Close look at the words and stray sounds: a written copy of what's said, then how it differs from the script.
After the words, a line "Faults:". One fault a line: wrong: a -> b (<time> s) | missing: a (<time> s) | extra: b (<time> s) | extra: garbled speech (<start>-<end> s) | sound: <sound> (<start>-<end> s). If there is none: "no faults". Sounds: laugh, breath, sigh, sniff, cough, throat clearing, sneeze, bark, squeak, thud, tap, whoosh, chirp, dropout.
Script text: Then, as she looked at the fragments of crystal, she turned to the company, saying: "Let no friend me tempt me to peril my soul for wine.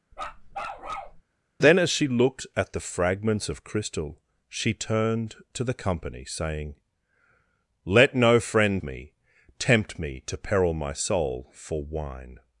Then, as she looked at the fragments of crystal, she turned to the company, saying: "Let no friend me tempt me to peril my soul for wine.
Faults:
sound: bark (0.1-1.2 s)